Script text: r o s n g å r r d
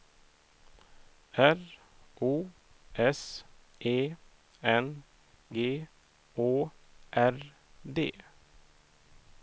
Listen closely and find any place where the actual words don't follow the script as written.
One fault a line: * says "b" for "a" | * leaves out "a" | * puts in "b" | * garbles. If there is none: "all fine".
* puts in "e"
* leaves out "r"